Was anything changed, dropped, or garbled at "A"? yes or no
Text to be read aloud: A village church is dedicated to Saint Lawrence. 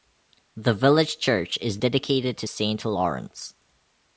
yes